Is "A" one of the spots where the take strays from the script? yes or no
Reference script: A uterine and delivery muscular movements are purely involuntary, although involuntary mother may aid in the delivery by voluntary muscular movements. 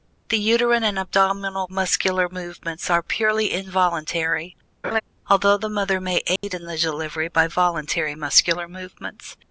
yes